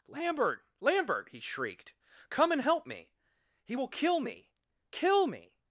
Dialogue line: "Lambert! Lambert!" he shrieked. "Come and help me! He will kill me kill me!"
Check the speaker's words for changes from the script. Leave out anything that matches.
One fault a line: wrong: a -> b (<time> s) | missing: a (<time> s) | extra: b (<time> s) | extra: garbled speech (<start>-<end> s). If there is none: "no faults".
no faults